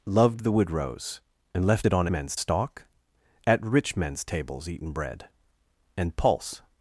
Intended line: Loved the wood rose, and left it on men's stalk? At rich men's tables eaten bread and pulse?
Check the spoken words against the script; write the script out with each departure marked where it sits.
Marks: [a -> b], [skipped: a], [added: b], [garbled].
Loved the wood rose, and left it on men's stalk? At rich men's tables eaten bread and pulse?